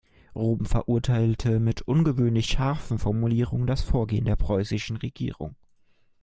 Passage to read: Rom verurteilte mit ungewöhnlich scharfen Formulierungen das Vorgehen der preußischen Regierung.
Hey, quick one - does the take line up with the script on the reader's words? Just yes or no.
yes